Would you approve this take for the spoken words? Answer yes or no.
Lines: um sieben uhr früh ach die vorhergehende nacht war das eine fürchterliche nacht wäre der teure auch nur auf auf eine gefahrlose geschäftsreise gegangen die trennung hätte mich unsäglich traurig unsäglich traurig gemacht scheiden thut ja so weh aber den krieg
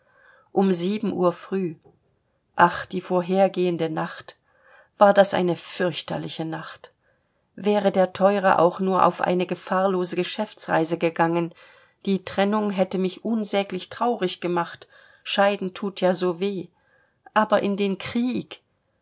no